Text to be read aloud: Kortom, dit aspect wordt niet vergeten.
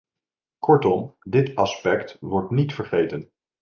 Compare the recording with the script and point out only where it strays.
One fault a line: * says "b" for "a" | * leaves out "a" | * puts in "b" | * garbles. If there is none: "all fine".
all fine